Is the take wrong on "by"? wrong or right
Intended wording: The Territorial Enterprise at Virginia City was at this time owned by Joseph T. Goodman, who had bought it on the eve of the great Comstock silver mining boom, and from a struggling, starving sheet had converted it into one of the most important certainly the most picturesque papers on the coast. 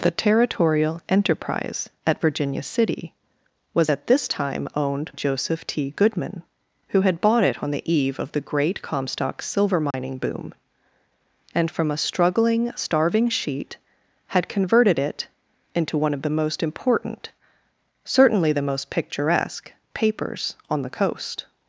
wrong